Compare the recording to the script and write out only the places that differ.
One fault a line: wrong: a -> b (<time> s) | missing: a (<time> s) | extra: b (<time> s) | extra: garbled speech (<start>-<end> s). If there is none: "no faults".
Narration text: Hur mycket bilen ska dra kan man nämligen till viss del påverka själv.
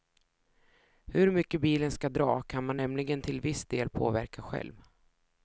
no faults